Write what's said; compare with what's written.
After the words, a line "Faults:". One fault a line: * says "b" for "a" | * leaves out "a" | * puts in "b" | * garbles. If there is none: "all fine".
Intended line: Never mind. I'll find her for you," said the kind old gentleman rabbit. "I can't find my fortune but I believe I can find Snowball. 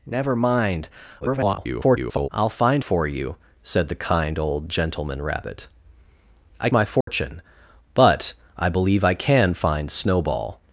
Never mind. [garbled] I'll find for you," said the kind old gentleman rabbit. "I my fortune but I believe I can find Snowball.
Faults:
* garbles
* leaves out "her"
* leaves out "can't find"